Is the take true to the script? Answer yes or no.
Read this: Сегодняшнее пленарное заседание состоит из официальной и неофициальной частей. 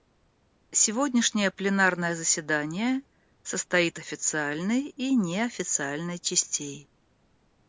no